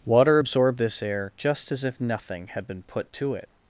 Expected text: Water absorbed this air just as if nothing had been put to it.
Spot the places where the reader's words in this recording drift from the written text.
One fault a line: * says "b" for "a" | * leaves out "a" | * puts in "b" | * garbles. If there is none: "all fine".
all fine